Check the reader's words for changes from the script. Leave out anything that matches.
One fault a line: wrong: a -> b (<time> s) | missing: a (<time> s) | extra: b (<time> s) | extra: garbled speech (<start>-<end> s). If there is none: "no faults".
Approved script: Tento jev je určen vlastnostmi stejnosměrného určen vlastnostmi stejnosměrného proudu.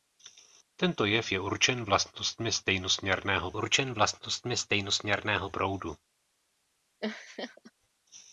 no faults